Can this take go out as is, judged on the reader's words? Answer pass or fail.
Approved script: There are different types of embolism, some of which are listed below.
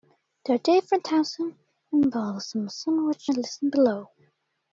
pass